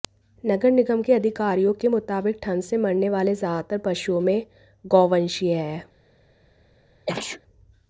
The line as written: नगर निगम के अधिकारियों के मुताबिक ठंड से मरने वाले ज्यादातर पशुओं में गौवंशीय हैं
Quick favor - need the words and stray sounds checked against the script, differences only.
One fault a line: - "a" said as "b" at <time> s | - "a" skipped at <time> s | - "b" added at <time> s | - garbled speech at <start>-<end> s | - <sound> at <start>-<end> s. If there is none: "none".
- sneeze at 7.1-7.4 s